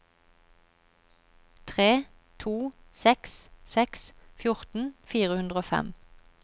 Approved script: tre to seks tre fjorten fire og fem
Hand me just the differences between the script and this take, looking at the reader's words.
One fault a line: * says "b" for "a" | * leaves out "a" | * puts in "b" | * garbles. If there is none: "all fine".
* says "seks" for "tre"
* puts in "hundre"